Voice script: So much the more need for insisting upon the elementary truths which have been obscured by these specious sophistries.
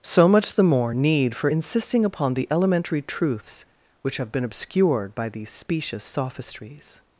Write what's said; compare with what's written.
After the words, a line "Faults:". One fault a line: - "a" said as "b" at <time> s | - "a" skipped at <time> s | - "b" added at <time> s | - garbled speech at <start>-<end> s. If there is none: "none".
So much the more need for insisting upon the elementary truths which have been obscured by these specious sophistries.
Faults:
none